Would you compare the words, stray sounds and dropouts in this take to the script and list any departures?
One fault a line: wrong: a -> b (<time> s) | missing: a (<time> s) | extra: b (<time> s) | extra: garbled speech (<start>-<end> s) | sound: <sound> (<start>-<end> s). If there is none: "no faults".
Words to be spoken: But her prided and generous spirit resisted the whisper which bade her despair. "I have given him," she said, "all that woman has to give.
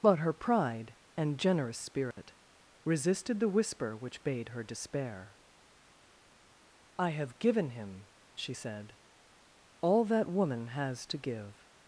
wrong: prided -> pride (0.3 s)
sound: dropout (2.1-2.2 s)